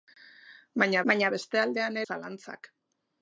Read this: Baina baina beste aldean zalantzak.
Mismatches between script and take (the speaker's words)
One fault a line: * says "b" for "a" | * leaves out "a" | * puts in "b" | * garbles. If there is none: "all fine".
all fine